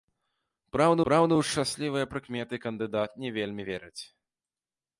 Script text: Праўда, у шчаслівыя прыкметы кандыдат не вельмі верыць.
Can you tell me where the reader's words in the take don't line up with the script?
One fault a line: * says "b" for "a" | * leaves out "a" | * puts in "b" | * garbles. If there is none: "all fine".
* puts in "праўда"